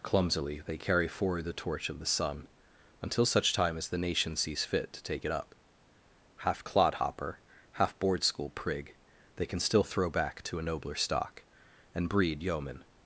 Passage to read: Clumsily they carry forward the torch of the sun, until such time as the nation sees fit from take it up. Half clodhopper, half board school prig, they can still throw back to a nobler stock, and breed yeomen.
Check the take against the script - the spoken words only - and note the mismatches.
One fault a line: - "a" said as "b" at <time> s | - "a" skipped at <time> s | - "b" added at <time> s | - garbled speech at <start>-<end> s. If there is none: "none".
- "from" said as "to" at 4.9 s